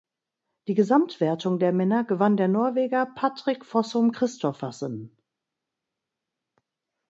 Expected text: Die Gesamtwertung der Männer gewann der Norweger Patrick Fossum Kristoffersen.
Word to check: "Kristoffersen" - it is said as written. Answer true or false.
true